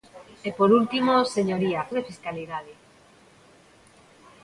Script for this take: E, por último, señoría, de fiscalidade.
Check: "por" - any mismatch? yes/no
no